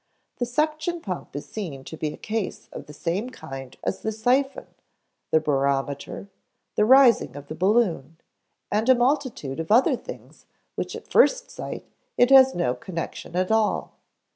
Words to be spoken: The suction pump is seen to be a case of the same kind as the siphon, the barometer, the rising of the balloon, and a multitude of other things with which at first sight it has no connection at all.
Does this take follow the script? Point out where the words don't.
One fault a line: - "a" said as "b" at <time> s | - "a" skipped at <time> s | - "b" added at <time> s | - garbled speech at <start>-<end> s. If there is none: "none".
none